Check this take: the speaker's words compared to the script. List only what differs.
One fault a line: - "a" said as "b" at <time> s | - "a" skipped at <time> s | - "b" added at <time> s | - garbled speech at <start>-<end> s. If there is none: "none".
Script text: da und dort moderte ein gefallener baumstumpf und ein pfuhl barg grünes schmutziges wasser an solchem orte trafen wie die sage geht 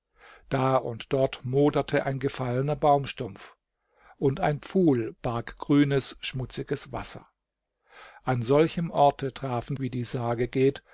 none